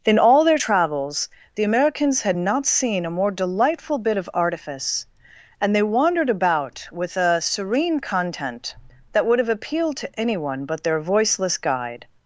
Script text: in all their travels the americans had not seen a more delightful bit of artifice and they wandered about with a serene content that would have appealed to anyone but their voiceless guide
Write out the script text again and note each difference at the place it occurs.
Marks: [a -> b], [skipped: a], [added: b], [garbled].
in all their travels the americans had not seen a more delightful bit of artifice and they wandered about with a serene content that would have appealed to anyone but their voiceless guide